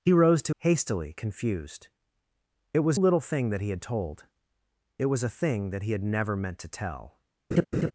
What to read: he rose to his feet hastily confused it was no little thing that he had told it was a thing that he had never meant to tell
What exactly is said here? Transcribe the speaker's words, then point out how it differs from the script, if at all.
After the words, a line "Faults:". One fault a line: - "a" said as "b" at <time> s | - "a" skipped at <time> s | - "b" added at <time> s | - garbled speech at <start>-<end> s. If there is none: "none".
he rose to hastily confused it was little thing that he had told it was a thing that he had never meant to tell
Faults:
- "his feet" skipped at 0.6 s
- "no" skipped at 3.0 s